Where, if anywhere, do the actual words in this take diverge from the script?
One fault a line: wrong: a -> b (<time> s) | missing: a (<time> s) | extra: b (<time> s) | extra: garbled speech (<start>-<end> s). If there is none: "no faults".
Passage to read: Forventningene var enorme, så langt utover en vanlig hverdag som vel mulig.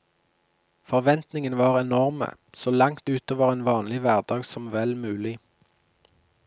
no faults